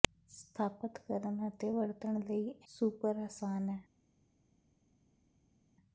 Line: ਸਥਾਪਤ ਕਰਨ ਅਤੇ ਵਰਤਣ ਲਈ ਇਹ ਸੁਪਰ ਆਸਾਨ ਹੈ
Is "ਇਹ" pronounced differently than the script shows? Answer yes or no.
yes